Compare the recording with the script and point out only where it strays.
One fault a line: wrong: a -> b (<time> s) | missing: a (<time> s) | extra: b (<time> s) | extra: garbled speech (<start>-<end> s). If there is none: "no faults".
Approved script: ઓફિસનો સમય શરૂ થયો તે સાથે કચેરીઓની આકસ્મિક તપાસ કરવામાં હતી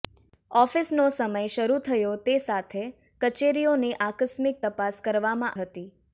no faults